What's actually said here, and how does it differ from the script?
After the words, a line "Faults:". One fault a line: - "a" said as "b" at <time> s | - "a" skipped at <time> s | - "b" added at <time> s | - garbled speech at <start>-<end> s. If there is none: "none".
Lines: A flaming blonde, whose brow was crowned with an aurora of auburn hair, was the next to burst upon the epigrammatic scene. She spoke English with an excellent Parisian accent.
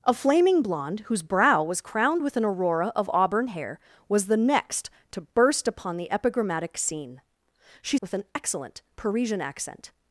A flaming blonde, whose brow was crowned with an aurora of auburn hair, was the next to burst upon the epigrammatic scene. She with an excellent Parisian accent.
Faults:
- "spoke English" skipped at 8.0 s